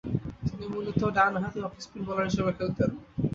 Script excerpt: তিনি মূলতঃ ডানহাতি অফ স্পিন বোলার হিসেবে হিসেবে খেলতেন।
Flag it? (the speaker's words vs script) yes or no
yes